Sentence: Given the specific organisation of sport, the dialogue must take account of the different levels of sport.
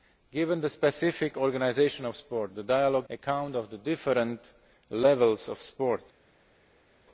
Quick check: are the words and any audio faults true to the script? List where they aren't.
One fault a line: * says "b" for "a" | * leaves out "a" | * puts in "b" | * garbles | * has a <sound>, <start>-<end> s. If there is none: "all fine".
* leaves out "must take"